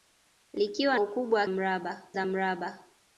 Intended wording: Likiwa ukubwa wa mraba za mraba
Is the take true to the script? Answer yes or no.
yes